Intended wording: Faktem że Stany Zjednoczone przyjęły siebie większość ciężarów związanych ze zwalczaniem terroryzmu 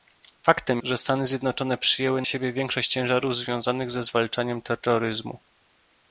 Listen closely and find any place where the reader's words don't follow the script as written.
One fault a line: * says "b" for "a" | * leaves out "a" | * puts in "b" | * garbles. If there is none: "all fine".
all fine